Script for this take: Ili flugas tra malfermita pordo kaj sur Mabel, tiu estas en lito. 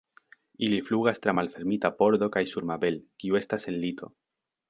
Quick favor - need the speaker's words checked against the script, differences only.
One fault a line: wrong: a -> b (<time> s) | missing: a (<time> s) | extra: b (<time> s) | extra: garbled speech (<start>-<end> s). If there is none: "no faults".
wrong: tiu -> kiu (3.2 s)